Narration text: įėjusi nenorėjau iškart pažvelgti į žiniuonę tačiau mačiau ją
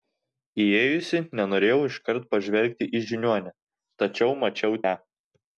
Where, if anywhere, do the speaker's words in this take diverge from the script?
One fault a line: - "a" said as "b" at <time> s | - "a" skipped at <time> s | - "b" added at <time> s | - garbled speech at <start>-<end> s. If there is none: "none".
none